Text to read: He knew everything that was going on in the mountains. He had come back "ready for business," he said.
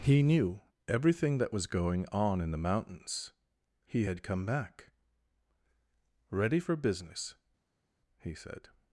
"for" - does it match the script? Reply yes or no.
yes